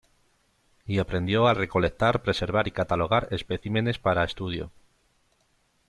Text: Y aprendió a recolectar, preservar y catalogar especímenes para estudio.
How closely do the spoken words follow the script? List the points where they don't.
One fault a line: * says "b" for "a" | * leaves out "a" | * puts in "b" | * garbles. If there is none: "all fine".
all fine